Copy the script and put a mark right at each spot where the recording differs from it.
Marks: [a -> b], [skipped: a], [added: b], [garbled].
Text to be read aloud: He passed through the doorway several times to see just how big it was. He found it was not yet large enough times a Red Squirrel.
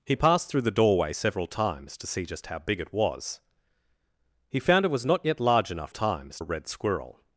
He passed through the doorway several times to see just how big it was. He found it was not yet large enough times a Red Squirrel.